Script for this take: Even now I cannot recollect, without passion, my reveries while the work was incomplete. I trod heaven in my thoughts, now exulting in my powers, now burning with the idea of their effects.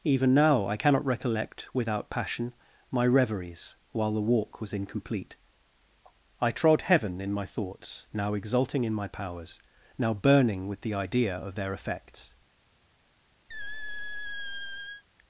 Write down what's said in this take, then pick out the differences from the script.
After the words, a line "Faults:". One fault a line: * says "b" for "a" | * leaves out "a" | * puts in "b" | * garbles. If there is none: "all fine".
Even now I cannot recollect, without passion, my reveries while the walk was incomplete. I trod heaven in my thoughts, now exulting in my powers, now burning with the idea of their effects.
Faults:
* says "walk" for "work"